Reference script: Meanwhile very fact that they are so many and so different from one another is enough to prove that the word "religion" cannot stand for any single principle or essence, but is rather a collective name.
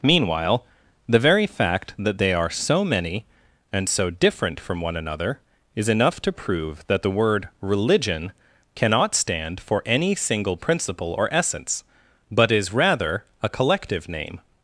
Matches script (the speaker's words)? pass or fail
fail